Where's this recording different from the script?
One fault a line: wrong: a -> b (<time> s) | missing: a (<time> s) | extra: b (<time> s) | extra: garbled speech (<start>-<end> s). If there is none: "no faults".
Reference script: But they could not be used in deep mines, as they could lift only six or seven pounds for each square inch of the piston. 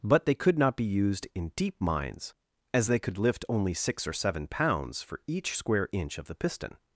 no faults